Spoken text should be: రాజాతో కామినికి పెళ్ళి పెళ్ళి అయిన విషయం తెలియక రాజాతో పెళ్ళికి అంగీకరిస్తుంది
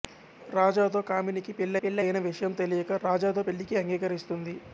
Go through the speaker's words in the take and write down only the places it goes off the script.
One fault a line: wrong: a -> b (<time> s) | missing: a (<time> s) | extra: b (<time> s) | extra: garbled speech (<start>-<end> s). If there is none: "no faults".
no faults